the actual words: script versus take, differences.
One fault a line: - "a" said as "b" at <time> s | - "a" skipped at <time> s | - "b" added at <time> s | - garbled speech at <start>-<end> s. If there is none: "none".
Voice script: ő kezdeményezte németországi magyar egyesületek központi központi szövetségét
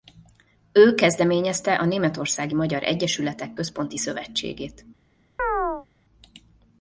- "a" added at 1.8 s
- "központi" skipped at 4.0 s